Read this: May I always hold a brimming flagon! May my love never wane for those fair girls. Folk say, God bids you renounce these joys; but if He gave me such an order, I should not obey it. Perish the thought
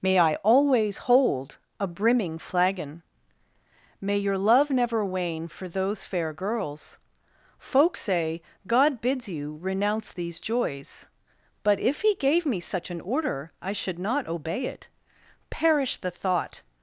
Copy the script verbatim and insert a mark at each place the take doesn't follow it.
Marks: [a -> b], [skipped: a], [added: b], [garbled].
May I always hold a brimming flagon! May [my -> your] love never wane for those fair girls. Folk say, God bids you renounce these joys; but if He gave me such an order, I should not obey it. Perish the thought